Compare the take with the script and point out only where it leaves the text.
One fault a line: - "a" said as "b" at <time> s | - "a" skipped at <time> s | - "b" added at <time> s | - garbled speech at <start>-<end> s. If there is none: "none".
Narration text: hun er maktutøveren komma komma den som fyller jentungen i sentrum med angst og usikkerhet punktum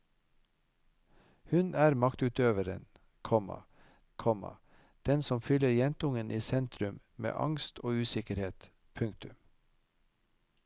none